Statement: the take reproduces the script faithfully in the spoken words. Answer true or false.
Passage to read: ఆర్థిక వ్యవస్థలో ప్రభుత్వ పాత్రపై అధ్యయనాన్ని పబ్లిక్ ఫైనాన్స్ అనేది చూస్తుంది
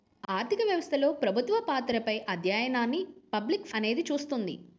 false